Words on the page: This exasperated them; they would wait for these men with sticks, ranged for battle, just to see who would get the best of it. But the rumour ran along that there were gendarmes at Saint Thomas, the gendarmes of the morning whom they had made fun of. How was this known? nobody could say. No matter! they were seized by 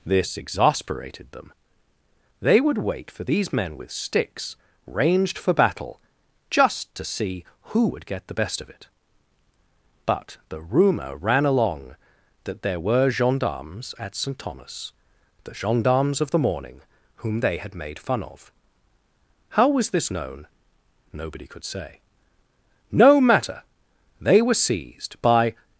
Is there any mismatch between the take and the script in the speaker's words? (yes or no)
no